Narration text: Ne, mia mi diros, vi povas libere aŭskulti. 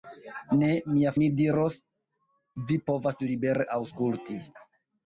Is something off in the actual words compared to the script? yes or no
no